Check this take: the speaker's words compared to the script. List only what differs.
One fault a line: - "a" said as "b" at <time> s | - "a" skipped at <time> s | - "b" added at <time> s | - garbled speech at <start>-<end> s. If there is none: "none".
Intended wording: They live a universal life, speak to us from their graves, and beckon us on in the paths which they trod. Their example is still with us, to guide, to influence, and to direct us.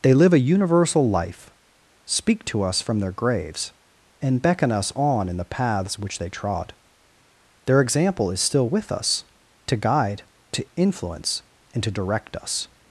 none